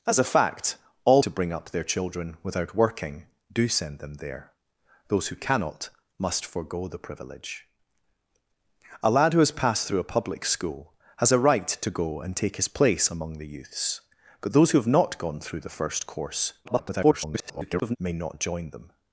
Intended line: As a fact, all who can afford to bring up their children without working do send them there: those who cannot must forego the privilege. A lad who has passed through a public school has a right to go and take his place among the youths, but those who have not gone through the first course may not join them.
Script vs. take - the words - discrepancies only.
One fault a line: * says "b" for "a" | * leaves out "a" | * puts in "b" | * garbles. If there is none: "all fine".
* leaves out "who can afford"
* garbles